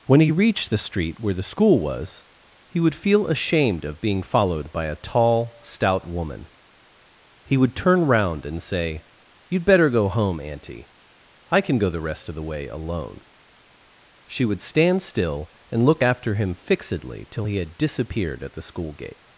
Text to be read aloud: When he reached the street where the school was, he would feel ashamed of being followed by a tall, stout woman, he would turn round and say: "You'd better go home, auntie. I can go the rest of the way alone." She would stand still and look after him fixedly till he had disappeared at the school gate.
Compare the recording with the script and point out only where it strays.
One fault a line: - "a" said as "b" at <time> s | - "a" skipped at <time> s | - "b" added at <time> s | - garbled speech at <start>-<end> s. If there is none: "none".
none